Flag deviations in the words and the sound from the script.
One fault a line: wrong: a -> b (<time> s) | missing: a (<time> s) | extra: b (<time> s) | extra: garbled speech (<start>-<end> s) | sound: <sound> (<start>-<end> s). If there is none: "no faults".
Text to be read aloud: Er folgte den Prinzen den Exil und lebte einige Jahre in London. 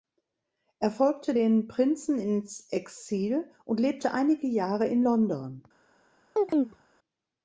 wrong: den -> ins (2.2 s)
sound: chirp (6.4-6.8 s)